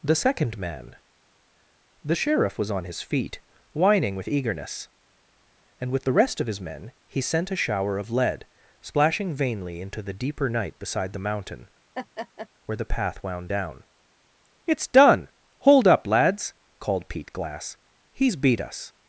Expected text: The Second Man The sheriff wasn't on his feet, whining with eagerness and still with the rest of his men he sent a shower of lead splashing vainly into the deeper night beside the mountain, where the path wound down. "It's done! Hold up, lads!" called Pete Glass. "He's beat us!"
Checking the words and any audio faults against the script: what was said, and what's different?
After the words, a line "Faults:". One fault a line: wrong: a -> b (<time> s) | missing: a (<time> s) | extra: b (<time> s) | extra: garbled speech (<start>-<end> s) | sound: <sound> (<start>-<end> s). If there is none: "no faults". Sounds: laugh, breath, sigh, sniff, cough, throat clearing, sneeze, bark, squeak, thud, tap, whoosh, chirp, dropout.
The Second Man The sheriff was on his feet, whining with eagerness and with the rest of his men he sent a shower of lead splashing vainly into the deeper night beside the mountain, where the path wound down. "It's done! Hold up, lads!" called Pete Glass. "He's beat us!"
Faults:
wrong: wasn't -> was (2.6 s)
missing: still (5.9 s)
sound: laugh (11.9-12.5 s)